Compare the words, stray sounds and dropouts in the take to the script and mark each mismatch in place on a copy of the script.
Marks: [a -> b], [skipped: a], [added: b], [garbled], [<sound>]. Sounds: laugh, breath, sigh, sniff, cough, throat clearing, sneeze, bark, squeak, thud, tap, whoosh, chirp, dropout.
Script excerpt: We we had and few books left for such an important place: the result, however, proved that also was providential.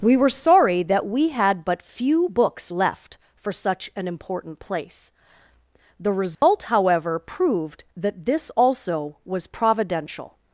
We [added: were sorry that] we had [and -> but] few books left for such an important place: the result, [dropout] however, proved that [added: this] also was providential.